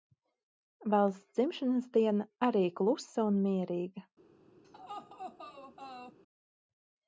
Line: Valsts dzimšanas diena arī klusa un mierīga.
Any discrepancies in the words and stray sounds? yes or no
yes